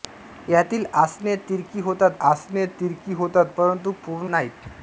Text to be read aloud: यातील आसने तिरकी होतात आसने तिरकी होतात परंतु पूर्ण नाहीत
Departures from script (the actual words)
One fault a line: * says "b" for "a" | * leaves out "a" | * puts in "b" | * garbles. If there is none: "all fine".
all fine